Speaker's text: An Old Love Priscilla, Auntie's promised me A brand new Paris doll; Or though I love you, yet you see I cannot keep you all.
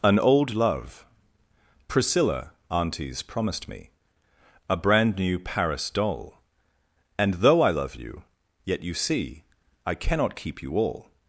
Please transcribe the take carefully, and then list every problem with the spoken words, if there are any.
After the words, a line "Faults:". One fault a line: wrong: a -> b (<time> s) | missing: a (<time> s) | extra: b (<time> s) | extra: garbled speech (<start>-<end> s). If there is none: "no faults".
An Old Love Priscilla, Auntie's promised me A brand new Paris doll; And though I love you, yet you see I cannot keep you all.
Faults:
wrong: Or -> And (7.2 s)